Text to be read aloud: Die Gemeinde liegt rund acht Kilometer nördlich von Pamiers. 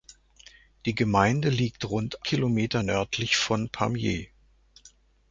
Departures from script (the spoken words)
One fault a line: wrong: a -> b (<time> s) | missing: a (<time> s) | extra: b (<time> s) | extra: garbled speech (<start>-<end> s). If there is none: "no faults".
missing: acht (2.2 s)